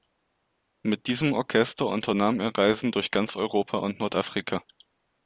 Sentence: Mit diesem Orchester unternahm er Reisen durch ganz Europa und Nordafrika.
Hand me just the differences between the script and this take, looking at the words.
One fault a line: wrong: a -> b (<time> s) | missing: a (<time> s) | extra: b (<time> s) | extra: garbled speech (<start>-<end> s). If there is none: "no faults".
no faults